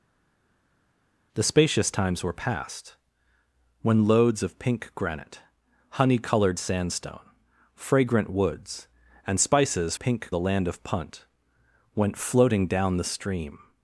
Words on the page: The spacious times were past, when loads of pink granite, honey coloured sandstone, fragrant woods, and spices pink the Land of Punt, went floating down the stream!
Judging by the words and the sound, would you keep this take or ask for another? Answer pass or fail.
pass